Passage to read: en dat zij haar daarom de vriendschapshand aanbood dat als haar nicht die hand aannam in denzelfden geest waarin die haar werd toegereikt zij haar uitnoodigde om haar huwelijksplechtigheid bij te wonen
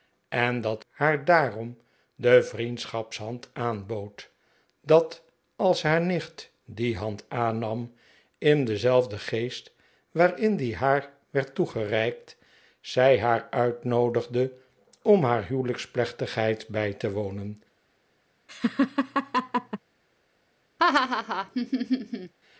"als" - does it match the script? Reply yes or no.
yes